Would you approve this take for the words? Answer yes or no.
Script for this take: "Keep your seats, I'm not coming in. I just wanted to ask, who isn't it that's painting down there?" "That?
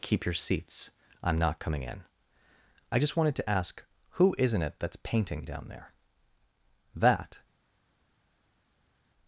yes